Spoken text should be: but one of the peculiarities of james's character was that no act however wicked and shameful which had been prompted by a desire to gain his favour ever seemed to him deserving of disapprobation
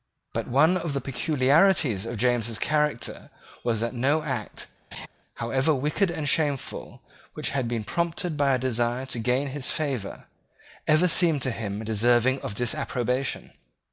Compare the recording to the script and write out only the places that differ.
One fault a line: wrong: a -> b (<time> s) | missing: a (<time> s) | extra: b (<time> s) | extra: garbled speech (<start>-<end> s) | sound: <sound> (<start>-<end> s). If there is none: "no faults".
sound: laugh (4.9-5.1 s)